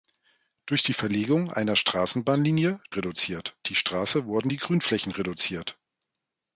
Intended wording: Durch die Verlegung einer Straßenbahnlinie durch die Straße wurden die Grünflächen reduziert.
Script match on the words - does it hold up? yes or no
no